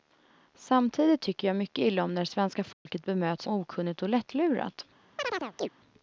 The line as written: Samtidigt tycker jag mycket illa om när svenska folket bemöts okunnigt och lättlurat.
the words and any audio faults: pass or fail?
fail